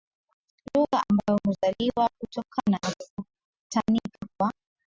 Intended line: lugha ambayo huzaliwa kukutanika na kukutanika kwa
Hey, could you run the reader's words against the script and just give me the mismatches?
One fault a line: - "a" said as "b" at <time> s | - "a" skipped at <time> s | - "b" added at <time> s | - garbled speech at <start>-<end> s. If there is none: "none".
- "kukutanika" said as "kutokana" at 2.2 s